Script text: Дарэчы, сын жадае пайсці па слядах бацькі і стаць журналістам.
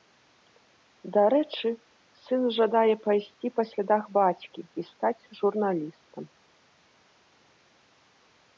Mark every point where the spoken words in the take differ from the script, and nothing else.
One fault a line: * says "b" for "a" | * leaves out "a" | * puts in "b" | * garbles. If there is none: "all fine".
all fine